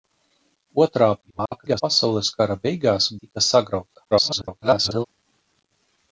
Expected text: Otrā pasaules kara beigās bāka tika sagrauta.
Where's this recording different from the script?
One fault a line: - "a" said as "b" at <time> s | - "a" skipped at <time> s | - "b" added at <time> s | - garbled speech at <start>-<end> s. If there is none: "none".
- garbled speech at 1.2-1.8 s
- "bāka" skipped at 3.1 s
- garbled speech at 4.1-5.1 s